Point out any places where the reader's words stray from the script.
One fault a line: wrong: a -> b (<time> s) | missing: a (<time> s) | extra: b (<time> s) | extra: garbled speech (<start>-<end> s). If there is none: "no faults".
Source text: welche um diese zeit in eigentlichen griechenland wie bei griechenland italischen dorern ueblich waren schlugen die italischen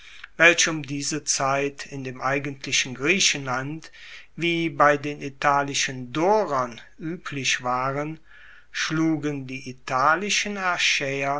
extra: dem (2.0 s)
wrong: griechenland -> den (5.0 s)